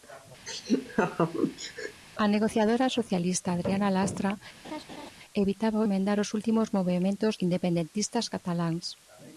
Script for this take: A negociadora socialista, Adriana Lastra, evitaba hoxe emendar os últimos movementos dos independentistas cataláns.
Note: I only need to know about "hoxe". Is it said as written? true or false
false